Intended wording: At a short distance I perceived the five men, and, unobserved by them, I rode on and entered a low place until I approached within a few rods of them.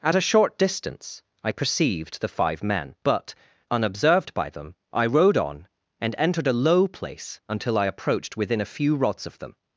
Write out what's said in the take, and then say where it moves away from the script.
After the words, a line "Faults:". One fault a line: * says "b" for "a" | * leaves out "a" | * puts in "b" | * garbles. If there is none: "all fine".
At a short distance I perceived the five men, but, unobserved by them, I rode on and entered a low place until I approached within a few rods of them.
Faults:
* says "but" for "and"